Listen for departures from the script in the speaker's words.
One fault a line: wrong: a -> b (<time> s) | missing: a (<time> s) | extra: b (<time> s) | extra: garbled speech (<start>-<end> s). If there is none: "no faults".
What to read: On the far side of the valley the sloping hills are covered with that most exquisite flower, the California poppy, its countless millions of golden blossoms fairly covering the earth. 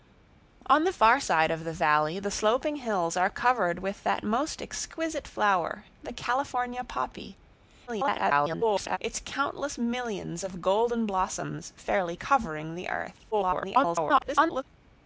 extra: garbled speech (7.9-9.0 s)
extra: garbled speech (13.3-14.6 s)